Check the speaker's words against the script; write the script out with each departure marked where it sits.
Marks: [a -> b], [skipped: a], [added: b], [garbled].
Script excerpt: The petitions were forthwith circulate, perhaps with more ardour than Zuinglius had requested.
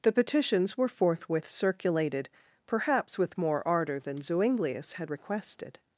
The petitions were forthwith [circulate, -> circulated] perhaps with more ardour than Zuinglius had requested.